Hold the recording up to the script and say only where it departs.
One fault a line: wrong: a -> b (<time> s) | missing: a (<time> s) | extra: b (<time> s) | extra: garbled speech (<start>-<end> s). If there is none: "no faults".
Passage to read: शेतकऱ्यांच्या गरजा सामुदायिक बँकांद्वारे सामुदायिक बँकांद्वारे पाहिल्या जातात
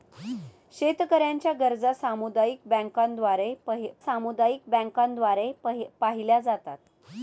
no faults